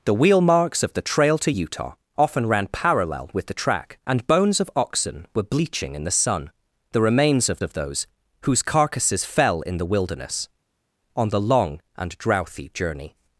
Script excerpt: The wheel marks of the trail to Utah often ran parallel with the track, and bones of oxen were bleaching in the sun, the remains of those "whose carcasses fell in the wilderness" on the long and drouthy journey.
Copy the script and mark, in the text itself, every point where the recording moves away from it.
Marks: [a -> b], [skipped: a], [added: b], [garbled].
The wheel marks of the trail to Utah often ran parallel with the track, and bones of oxen were bleaching in the sun, the remains of [added: of] those "whose carcasses fell in the wilderness" on the long and drouthy journey.